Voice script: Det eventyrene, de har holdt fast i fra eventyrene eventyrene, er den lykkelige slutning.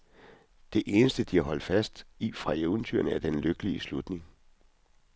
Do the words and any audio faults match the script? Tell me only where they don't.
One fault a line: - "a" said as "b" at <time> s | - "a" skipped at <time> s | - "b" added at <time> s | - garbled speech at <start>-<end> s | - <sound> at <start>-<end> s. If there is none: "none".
- "eventyrene" said as "eneste" at 0.8 s
- "eventyrene" skipped at 3.1 s